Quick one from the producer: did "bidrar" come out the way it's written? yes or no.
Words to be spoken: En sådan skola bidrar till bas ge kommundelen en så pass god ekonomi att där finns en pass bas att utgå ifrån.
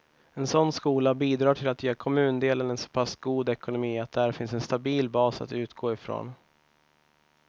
yes